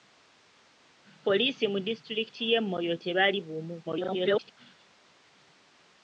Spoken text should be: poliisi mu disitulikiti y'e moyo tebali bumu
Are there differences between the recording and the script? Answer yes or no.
yes